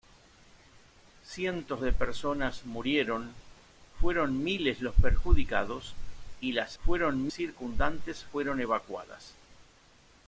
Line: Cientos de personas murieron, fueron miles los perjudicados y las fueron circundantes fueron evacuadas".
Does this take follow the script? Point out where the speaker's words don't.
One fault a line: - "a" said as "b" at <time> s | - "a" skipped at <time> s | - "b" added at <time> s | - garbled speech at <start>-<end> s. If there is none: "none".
none